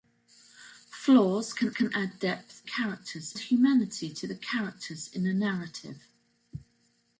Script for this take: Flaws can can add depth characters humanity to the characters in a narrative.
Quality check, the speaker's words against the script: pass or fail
pass